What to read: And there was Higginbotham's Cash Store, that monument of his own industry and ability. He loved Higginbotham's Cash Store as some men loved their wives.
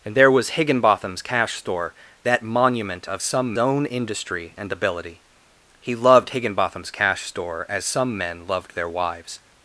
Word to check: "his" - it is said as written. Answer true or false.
false